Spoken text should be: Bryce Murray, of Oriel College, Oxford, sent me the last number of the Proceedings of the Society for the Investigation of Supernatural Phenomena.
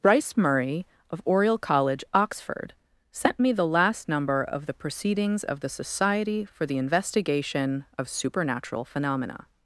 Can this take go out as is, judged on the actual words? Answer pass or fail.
pass